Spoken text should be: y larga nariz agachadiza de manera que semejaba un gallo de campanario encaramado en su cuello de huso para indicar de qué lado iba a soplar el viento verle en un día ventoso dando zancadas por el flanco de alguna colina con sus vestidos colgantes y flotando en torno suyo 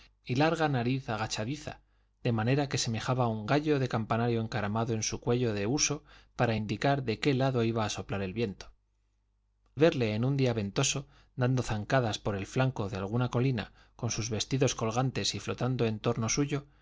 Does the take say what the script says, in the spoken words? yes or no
yes